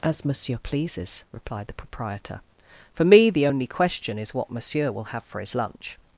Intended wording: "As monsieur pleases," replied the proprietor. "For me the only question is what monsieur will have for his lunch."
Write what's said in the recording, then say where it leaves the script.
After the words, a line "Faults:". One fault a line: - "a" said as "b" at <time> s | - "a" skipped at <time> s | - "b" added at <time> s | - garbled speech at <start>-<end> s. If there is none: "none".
"As monsieur pleases," replied the proprietor. "For me the only question is what monsieur will have for his lunch."
Faults:
none